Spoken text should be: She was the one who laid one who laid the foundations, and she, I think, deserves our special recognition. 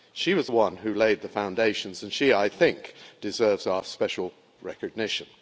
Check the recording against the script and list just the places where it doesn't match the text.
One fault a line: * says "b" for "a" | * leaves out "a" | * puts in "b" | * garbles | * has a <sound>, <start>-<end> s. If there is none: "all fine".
* leaves out "one who laid"